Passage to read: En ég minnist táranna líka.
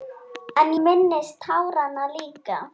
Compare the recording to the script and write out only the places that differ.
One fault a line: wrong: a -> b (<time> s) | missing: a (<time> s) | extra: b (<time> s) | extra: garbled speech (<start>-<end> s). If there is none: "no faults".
missing: ég (0.7 s)